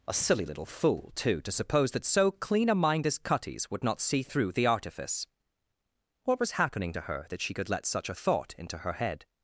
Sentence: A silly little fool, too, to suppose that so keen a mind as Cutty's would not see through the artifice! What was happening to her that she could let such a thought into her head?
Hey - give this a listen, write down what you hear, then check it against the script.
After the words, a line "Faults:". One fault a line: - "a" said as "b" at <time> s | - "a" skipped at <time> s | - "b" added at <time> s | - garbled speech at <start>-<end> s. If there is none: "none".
A silly little fool, too, to suppose that so clean a mind as Cutty's would not see through the artifice! What was happening to her that she could let such a thought into her head?
Faults:
- "keen" said as "clean" at 2.3 s